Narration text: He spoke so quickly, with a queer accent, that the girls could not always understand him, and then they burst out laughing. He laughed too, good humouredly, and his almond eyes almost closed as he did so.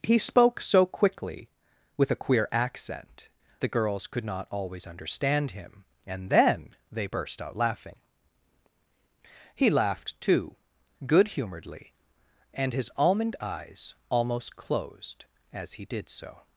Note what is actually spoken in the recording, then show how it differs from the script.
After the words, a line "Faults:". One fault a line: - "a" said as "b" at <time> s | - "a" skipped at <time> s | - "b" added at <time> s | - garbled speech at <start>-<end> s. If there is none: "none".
He spoke so quickly, with a queer accent, the girls could not always understand him, and then they burst out laughing. He laughed too, good humouredly, and his almond eyes almost closed as he did so.
Faults:
- "that" skipped at 3.3 s